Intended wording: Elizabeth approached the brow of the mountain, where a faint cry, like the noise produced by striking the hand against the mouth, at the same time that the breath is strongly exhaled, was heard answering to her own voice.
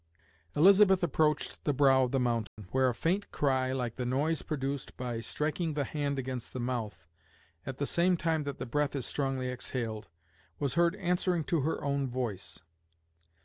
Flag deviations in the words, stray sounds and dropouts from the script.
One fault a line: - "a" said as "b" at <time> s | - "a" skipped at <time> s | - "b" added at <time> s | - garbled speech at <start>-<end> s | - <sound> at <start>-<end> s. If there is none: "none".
- dropout at 2.5-2.6 s